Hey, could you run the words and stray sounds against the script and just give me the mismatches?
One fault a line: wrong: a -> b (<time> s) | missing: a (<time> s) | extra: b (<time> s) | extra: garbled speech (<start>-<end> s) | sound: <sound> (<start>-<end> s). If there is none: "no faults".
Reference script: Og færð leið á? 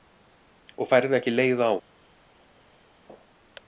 extra: ekki (1.2 s)